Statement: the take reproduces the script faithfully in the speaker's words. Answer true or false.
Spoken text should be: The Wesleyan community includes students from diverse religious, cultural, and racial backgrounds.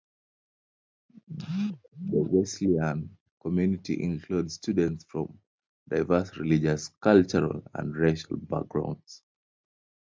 true